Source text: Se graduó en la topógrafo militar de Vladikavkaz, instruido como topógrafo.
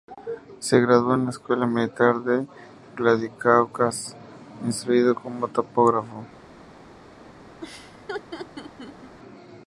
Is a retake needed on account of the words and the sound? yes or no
yes